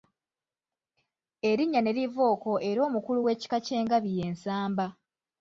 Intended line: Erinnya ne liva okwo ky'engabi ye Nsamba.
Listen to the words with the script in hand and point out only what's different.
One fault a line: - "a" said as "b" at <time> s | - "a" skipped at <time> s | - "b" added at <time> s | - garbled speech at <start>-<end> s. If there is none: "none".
- "era omukulu w'ekika" added at 2.7 s